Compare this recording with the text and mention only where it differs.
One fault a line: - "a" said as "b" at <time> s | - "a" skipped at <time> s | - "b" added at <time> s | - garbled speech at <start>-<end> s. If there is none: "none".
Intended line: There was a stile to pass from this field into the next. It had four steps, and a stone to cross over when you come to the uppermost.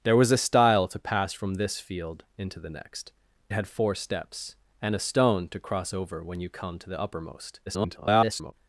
- "It" skipped at 3.1 s
- garbled speech at 7.7-8.5 s